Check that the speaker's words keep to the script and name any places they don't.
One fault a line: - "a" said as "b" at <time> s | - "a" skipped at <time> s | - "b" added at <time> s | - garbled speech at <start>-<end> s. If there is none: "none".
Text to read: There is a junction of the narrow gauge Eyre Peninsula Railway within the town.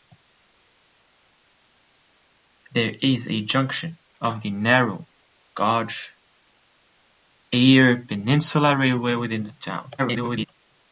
- garbled speech at 10.0-10.5 s